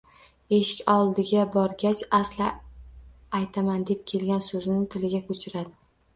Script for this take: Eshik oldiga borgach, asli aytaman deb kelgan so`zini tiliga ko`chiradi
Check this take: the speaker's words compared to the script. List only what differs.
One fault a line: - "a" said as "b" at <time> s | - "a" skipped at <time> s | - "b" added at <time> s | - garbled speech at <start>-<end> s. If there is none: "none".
none